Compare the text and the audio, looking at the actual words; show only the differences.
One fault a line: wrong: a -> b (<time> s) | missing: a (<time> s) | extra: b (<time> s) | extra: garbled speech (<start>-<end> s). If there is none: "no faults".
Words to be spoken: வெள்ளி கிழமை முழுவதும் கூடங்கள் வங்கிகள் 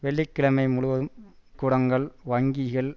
no faults